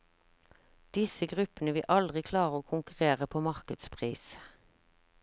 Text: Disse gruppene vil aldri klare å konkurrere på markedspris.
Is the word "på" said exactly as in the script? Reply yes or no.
yes